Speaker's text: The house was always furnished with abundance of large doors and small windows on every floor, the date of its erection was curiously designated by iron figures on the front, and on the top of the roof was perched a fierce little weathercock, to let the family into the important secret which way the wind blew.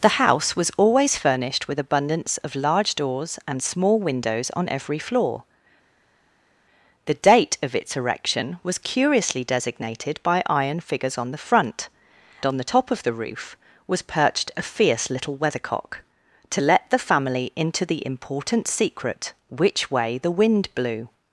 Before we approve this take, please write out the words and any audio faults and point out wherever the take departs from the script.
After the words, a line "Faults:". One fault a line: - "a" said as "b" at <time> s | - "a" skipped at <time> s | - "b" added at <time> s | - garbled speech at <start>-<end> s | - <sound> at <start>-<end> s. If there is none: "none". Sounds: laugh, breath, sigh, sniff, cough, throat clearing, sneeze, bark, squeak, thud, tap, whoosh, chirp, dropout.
The house was always furnished with abundance of large doors and small windows on every floor, the date of its erection was curiously designated by iron figures on the front, on the top of the roof was perched a fierce little weathercock, to let the family into the important secret which way the wind blew.
Faults:
- "and" skipped at 11.9 s